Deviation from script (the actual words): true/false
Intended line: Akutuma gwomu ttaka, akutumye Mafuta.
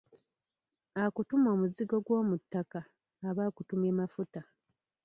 true